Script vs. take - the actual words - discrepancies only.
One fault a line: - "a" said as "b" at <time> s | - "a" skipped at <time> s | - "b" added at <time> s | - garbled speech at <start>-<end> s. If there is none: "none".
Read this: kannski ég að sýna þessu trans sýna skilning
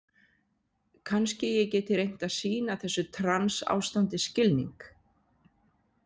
- "geti reynt" added at 1.8 s
- "sýna" said as "ástandi" at 3.8 s